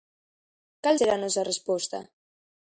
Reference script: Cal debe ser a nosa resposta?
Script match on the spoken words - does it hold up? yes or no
no